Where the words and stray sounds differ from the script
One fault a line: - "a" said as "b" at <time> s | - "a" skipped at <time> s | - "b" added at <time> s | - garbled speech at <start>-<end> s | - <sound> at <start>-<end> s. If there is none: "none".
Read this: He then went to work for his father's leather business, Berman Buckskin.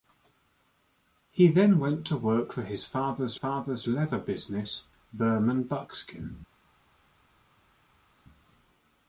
- "father's" added at 3.3 s